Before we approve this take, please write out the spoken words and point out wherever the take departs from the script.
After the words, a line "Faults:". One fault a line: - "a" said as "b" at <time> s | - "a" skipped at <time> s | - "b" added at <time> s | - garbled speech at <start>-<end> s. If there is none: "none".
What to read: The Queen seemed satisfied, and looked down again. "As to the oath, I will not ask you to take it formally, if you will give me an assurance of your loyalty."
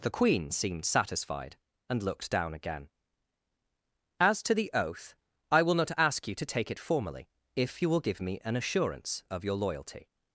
The Queen seemed satisfied, and looked down again. "As to the oath, I will not ask you to take it formally, if you will give me an assurance of your loyalty."
Faults:
none